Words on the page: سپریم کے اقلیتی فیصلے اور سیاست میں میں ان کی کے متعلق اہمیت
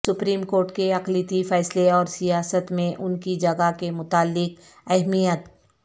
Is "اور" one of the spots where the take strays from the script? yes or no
no